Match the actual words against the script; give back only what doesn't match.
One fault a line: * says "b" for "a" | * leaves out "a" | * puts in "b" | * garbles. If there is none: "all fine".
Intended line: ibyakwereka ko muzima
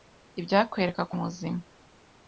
all fine